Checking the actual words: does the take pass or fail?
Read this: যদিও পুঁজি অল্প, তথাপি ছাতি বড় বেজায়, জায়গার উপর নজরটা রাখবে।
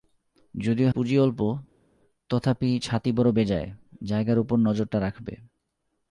pass